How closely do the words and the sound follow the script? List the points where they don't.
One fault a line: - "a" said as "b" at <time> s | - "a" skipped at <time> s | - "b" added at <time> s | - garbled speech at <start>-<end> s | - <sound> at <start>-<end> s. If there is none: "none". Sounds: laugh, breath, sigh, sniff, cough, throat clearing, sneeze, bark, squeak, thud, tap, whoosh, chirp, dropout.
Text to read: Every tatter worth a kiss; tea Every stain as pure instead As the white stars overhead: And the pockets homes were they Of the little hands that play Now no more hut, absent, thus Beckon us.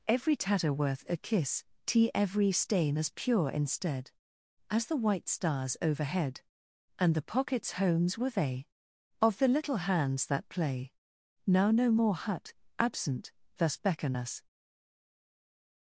none